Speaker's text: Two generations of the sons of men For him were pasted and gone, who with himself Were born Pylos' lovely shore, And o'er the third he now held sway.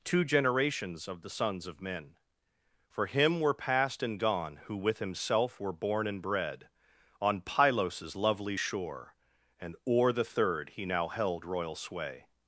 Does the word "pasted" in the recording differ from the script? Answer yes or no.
yes